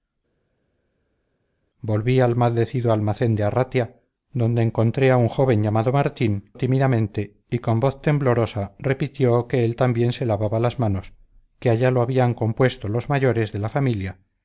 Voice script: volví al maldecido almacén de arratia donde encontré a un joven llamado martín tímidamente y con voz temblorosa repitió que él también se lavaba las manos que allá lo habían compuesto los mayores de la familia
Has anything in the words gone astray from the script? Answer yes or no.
no